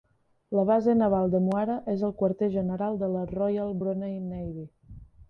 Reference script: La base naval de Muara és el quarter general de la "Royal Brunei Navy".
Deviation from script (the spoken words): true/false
false